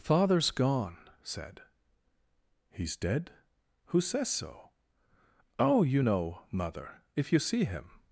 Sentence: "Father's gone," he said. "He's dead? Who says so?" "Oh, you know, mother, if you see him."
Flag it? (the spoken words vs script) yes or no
yes